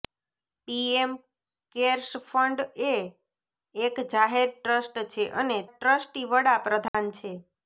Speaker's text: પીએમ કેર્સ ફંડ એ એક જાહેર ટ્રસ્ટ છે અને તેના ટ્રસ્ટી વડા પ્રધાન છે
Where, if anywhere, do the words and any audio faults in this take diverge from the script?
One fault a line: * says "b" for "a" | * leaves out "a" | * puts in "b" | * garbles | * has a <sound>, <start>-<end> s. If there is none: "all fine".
* leaves out "તેના"
* has a dropout, 6.9-6.9 s